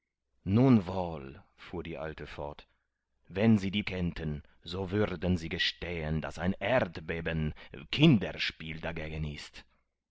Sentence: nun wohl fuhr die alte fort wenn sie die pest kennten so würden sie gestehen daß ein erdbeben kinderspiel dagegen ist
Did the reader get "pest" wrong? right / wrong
wrong